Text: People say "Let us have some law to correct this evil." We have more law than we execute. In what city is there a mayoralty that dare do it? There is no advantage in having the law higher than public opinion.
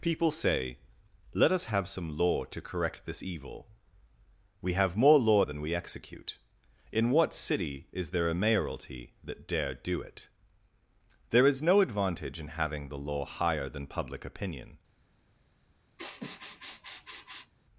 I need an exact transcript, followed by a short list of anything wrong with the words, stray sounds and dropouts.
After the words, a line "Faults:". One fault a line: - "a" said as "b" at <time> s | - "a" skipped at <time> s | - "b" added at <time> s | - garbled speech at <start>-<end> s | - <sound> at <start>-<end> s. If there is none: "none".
People say "Let us have some law to correct this evil." We have more law than we execute. In what city is there a mayoralty that dare do it? There is no advantage in having the law higher than public opinion.
Faults:
- sniff at 16.0-17.5 s